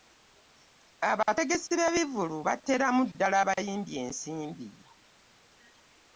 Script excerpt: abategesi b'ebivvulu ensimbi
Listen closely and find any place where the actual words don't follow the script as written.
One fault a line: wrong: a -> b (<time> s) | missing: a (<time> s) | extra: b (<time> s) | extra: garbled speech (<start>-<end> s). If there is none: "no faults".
extra: bateeramu ddala abayimbi (2.5 s)